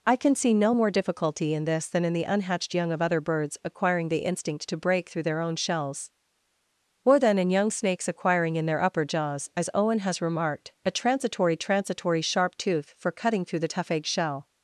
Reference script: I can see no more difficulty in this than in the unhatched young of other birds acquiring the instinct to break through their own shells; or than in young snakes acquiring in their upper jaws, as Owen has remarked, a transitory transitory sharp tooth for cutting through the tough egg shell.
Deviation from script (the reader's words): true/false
false